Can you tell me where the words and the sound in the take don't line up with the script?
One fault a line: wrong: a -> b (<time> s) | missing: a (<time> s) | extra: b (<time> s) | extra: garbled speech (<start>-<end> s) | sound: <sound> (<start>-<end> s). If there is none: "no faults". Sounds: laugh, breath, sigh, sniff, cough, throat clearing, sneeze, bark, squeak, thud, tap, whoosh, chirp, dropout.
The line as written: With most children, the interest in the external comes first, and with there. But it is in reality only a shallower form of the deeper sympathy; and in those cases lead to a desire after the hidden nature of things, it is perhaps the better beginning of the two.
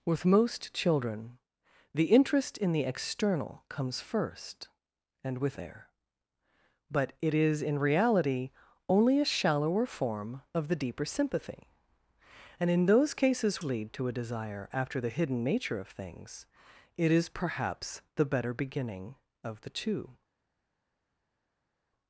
no faults